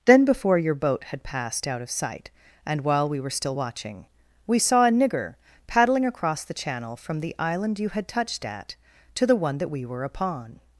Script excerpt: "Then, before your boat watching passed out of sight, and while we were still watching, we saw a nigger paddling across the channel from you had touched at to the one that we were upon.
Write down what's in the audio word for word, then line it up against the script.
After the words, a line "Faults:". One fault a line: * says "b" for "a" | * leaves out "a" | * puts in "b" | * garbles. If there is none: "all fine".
"Then, before your boat had passed out of sight, and while we were still watching, we saw a nigger paddling across the channel from the island you had touched at to the one that we were upon.
Faults:
* says "had" for "watching"
* puts in "the island"